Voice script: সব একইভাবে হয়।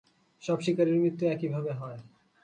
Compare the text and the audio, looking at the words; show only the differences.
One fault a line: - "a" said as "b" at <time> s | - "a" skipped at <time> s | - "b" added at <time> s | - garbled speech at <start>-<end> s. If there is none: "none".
- "শিকারীর মৃত্যু" added at 0.6 s